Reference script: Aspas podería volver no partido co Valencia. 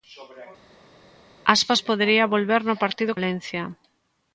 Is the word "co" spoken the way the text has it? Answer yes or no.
no